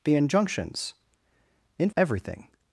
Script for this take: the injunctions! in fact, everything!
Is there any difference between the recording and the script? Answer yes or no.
yes